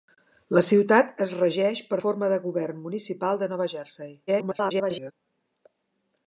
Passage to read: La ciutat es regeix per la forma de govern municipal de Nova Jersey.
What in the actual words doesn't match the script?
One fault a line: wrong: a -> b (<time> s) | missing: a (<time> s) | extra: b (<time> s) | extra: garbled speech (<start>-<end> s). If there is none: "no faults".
missing: la (2.0 s)
extra: garbled speech (4.3-5.1 s)